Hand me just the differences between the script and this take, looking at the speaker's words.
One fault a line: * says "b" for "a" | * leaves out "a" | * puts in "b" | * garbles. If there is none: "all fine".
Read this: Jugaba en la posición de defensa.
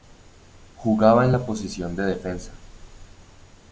all fine